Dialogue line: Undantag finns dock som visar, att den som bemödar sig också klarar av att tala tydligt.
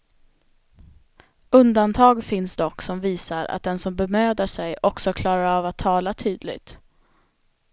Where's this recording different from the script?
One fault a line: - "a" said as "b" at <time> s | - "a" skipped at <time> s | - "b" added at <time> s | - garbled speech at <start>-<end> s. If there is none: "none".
none